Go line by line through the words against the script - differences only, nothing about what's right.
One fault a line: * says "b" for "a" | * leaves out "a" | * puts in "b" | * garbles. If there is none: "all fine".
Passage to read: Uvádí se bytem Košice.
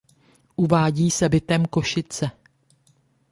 all fine